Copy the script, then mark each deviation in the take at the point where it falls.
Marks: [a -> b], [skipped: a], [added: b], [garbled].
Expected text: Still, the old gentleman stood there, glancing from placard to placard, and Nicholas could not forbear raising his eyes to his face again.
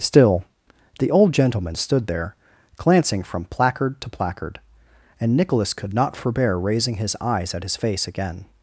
Still, the old gentleman stood there, glancing from placard to placard, and Nicholas could not forbear raising his eyes [to -> at] his face again.